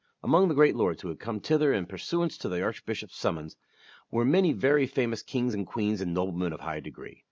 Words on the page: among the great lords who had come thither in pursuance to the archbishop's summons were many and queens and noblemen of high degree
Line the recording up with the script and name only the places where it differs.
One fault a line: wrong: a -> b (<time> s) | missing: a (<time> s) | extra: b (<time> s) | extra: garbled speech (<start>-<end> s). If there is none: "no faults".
extra: very famous kings (4.5 s)